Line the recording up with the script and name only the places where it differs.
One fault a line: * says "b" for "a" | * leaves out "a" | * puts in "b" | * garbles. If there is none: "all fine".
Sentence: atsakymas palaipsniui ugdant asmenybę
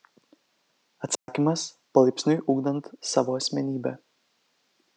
* puts in "savo"